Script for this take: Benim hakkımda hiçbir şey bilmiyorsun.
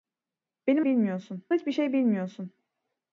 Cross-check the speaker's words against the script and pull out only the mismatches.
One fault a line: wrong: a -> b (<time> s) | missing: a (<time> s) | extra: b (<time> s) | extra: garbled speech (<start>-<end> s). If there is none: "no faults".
wrong: hakkımda -> bilmiyorsun (0.8 s)